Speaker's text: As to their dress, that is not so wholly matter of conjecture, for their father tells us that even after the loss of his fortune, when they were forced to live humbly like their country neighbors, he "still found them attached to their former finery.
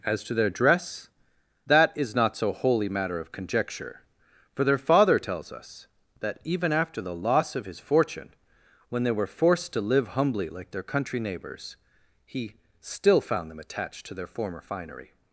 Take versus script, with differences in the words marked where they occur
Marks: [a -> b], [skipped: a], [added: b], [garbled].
As to their dress, that is not so wholly matter of conjecture, for their father tells us that even after the loss of his fortune, when they were forced to live humbly like their country neighbors, he "still found them attached to their former finery.